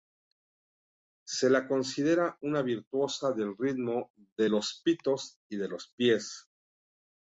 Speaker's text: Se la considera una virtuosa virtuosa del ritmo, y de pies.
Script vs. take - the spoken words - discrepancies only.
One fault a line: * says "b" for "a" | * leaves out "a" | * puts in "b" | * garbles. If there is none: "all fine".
* leaves out "virtuosa"
* puts in "de los pitos"
* puts in "los"